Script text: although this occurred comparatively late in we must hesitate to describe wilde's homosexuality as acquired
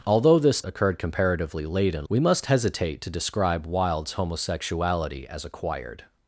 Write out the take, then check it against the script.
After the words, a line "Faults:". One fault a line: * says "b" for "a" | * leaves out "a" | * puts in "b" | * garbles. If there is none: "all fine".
although this occurred comparatively late in we must hesitate to describe wilde's homosexuality as acquired
Faults:
all fine